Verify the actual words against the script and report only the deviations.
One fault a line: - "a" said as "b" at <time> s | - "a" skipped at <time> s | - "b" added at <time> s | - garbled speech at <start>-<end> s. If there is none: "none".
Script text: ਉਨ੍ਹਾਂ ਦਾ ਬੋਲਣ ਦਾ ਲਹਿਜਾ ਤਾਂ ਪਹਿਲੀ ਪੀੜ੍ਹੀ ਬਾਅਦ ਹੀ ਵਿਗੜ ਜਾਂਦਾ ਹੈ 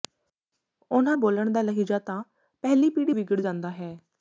- "ਦਾ" skipped at 1.2 s
- "ਬਾਅਦ ਹੀ" skipped at 3.1 s